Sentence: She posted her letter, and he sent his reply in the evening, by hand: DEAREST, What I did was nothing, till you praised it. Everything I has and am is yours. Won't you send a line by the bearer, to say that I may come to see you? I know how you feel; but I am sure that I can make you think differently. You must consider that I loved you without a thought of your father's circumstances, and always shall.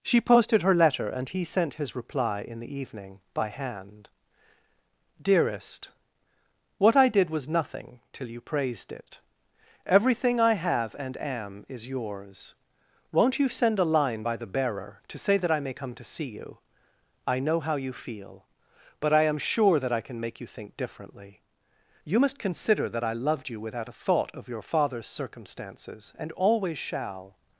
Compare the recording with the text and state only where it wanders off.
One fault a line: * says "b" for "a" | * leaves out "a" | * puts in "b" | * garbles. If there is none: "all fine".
* says "have" for "has"